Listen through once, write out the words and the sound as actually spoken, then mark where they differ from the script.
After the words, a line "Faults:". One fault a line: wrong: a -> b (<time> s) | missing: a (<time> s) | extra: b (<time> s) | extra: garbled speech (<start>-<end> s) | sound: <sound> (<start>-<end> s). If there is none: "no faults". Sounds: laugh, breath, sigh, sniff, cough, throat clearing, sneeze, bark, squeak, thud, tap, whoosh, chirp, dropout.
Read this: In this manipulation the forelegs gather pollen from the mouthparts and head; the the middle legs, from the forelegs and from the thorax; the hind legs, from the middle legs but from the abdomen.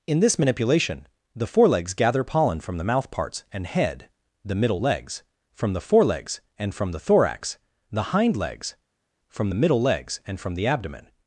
In this manipulation the forelegs gather pollen from the mouthparts and head; the middle legs, from the forelegs and from the thorax; the hind legs, from the middle legs and from the abdomen.
Faults:
missing: the (4.6 s)
wrong: but -> and (10.2 s)